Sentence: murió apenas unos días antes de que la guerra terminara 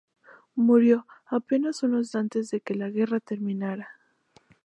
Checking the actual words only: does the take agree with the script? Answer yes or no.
no